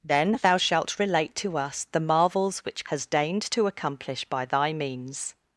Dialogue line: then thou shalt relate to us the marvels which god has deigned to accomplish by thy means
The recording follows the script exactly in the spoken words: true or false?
false